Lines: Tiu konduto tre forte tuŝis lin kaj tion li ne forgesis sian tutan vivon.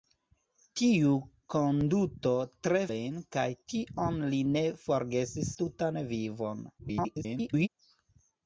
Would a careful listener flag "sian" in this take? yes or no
yes